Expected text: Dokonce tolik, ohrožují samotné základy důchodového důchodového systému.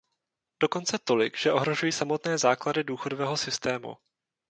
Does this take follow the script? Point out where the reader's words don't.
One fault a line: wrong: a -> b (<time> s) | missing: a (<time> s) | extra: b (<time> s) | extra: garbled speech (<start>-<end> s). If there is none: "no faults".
extra: že (1.4 s)
missing: důchodového (3.4 s)